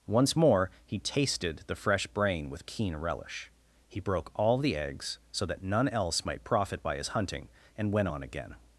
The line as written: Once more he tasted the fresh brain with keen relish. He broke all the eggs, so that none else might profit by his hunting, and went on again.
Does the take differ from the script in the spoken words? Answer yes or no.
no